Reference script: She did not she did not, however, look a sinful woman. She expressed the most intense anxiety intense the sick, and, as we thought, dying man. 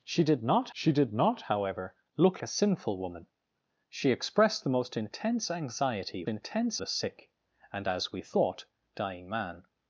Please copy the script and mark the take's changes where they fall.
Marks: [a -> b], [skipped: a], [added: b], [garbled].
She did not she did not, however, look a sinful woman. She expressed the most intense anxiety intense the sick, and, as we thought, dying man.